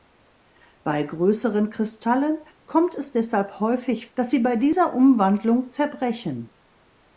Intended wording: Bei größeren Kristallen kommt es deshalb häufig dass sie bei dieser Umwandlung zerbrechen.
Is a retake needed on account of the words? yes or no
no